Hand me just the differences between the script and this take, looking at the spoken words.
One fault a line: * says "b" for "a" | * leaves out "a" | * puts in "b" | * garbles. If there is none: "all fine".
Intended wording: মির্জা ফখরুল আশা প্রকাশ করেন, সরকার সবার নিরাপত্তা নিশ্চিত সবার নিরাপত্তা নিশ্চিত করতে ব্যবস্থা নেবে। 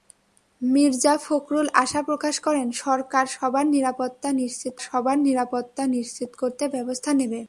all fine